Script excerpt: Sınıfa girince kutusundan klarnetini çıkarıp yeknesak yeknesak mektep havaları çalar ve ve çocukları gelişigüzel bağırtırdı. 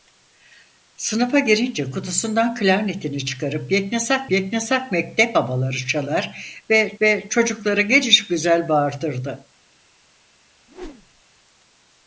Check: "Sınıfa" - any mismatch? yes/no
no